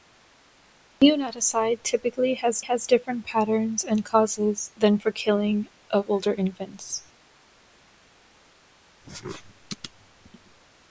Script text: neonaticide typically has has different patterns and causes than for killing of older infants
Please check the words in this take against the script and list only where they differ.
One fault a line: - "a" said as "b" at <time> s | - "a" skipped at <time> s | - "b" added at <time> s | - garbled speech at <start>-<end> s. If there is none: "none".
none